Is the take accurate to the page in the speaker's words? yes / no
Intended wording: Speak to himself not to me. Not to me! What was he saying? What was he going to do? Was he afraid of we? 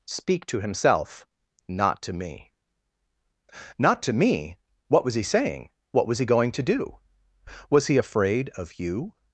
no